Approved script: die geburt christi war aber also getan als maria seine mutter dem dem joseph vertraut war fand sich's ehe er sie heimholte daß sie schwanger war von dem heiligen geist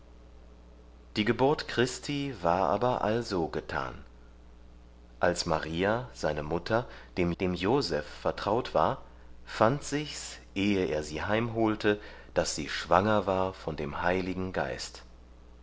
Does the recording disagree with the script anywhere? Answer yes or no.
no